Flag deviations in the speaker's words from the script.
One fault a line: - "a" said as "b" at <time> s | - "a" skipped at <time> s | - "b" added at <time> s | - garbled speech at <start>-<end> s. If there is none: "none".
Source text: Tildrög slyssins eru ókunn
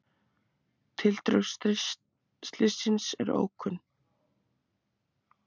none